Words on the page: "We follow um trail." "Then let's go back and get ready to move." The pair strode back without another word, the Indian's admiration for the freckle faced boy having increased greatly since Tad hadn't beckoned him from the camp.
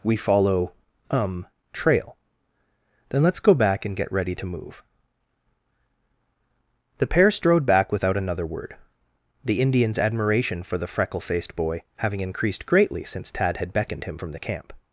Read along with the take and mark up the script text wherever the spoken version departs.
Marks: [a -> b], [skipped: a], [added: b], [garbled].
"We follow um trail." "Then let's go back and get ready to move." The pair strode back without another word, the Indian's admiration for the freckle faced boy having increased greatly since Tad [hadn't -> had] beckoned him from the camp.